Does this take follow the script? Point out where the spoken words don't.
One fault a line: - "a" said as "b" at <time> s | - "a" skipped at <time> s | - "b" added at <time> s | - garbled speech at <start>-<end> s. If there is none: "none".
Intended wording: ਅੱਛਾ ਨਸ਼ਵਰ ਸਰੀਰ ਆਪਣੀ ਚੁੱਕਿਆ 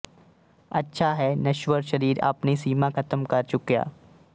- "ਹੈ" added at 1.1 s
- "ਸੀਮਾ ਖ਼ਤਮ ਕਰ" added at 2.6 s